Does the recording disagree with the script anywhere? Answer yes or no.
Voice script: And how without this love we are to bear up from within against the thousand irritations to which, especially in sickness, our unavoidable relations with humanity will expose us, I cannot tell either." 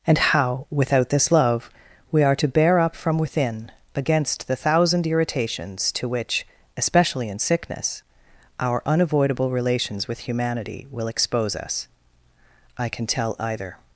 yes